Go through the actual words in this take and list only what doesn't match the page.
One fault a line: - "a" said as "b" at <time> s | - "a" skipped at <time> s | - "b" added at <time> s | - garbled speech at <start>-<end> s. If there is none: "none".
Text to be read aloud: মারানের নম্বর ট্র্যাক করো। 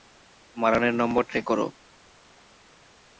none